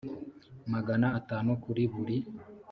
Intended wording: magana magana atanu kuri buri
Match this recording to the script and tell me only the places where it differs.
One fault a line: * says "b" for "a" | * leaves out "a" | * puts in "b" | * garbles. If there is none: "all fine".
* leaves out "magana"